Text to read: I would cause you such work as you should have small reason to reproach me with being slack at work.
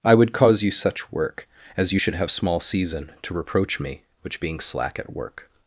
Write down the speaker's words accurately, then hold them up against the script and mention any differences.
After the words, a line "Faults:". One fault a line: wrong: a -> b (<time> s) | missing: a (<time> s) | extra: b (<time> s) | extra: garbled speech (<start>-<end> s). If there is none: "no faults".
I would cause you such work as you should have small season to reproach me which being slack at work.
Faults:
wrong: reason -> season (2.6 s)
wrong: with -> which (4.2 s)